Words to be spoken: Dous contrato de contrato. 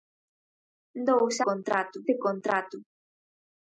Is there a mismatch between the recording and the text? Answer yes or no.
no